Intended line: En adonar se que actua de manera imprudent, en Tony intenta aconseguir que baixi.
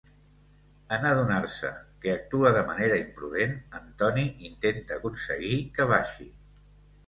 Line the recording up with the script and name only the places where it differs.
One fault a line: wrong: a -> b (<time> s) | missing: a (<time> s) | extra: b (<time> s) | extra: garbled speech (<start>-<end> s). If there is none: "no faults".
no faults